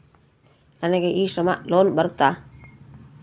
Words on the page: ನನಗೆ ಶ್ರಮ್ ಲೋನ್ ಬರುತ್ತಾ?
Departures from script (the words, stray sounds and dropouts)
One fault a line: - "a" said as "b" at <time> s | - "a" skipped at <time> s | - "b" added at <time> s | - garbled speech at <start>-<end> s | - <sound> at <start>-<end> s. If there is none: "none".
- "ಇ" added at 1.1 s